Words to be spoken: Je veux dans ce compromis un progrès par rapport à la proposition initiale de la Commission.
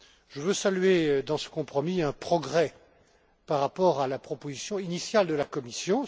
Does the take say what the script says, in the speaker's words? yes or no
no